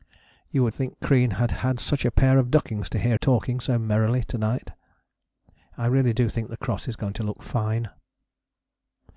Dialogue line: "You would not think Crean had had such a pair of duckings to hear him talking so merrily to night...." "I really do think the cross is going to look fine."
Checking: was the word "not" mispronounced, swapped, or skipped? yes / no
yes